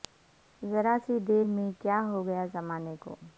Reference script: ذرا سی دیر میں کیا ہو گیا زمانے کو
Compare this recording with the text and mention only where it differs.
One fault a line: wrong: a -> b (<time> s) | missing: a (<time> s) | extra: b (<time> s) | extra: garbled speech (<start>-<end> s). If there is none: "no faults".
no faults